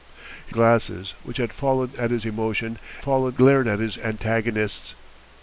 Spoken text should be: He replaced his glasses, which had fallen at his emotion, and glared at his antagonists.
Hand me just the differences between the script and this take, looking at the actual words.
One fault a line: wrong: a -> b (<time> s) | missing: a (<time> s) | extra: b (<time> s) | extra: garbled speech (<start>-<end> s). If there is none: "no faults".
missing: replaced his (0.6 s)
wrong: and -> fallen (3.0 s)